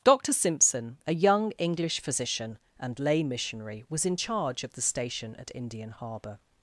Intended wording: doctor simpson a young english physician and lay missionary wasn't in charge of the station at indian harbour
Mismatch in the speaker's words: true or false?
true